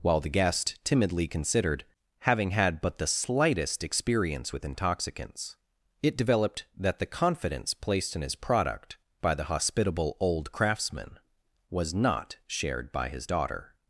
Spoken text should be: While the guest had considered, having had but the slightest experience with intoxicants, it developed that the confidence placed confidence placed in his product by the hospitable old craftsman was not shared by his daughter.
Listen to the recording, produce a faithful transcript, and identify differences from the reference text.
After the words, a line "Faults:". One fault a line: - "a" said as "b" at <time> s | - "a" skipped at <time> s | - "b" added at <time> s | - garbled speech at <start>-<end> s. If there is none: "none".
While the guest timidly considered, having had but the slightest experience with intoxicants, it developed that the confidence placed in his product by the hospitable old craftsman was not shared by his daughter.
Faults:
- "had" said as "timidly" at 0.8 s
- "confidence placed" skipped at 8.1 s